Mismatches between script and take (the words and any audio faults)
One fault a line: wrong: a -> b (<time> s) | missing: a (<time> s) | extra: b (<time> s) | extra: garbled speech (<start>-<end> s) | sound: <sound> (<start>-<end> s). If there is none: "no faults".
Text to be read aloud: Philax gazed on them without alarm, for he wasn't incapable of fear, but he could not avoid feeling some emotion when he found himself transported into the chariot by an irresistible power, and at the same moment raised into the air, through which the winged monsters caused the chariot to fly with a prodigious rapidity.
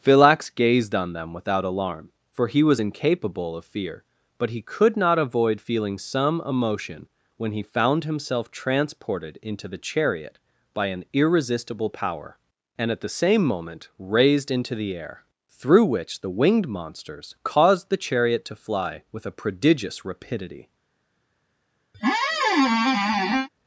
wrong: wasn't -> was (2.6 s)
sound: squeak (21.9-23.5 s)